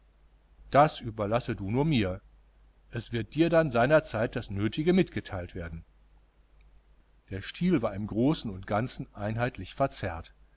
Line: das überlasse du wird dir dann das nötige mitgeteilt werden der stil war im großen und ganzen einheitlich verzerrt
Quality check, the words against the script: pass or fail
fail